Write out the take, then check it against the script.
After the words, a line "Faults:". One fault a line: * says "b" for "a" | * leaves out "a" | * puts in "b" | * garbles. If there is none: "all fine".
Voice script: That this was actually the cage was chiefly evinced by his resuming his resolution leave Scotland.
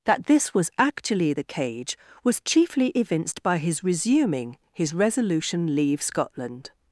That this was actually the cage was chiefly evinced by his resuming his resolution leave Scotland.
Faults:
all fine